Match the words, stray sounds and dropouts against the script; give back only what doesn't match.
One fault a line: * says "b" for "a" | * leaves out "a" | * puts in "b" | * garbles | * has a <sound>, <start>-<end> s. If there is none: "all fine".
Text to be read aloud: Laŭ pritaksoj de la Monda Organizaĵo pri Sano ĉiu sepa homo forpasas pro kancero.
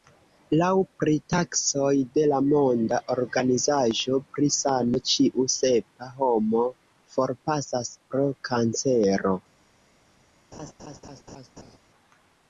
* has a laugh, 10.5-11.8 s